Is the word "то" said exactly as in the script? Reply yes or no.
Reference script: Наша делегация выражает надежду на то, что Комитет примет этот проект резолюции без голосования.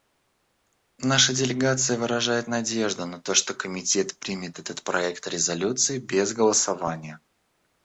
yes